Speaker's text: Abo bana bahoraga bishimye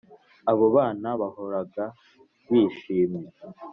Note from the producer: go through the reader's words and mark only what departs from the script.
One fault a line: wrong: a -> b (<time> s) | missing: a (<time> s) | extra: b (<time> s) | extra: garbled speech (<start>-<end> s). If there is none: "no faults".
no faults